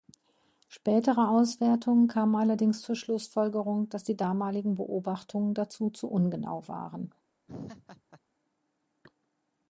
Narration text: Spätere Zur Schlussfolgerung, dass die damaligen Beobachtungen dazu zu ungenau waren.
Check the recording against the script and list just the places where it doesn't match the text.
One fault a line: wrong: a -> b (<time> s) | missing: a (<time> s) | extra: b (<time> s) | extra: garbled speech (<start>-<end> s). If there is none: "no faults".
extra: Auswertungen kamen allerdings (1.3 s)